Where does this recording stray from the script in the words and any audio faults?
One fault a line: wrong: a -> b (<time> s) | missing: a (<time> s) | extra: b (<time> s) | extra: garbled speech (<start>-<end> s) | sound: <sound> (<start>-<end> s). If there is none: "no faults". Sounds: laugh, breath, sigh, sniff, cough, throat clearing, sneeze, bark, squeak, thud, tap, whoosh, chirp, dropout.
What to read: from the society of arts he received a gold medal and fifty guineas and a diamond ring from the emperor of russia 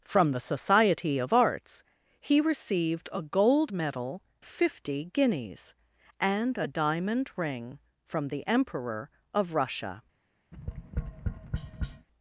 missing: and (4.2 s)
sound: tap (10.5-12.1 s)